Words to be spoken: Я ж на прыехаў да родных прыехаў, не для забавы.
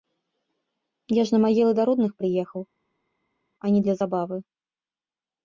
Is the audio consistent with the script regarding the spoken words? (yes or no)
no